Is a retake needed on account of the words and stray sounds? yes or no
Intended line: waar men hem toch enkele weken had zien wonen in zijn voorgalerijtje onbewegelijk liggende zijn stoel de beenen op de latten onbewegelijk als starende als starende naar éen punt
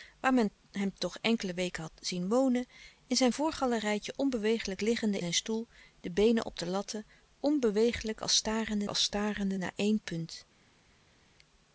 no